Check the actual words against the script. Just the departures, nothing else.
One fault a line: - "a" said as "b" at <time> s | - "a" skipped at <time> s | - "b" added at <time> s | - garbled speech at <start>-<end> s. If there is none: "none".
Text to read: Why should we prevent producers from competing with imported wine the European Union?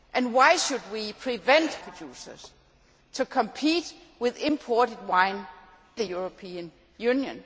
none